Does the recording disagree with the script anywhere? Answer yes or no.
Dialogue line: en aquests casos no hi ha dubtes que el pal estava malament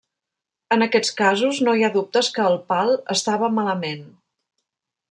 no